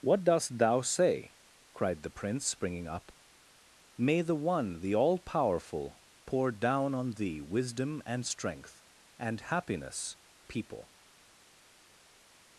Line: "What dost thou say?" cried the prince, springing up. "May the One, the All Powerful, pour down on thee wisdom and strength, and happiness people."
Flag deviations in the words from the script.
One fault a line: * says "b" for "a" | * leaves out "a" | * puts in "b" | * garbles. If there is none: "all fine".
all fine